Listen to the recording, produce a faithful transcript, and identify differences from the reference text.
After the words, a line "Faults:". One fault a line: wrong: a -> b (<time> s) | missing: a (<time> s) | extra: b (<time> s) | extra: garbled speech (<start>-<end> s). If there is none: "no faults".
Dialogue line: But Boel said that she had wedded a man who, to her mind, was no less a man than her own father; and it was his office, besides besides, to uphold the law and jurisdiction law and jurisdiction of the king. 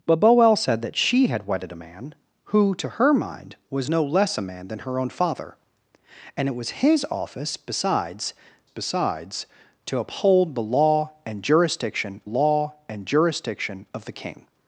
But Boel said that she had wedded a man who, to her mind, was no less a man than her own father; and it was his office, besides besides, to uphold the law and jurisdiction law and jurisdiction of the king.
Faults:
no faults